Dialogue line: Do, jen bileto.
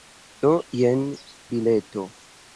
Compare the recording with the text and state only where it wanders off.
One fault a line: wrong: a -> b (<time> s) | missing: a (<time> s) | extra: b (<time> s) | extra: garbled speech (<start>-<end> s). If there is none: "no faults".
no faults